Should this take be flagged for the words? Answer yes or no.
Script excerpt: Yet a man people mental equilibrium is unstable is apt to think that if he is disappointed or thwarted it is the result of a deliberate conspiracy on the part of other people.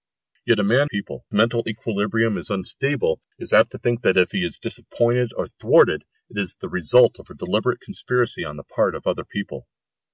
no